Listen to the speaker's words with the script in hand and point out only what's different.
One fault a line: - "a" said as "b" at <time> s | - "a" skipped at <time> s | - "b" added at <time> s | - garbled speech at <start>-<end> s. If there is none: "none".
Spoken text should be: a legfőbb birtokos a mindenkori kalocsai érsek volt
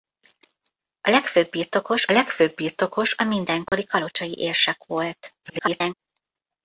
- "legfőbb birtokos" added at 2.1 s
- garbled speech at 5.4-5.9 s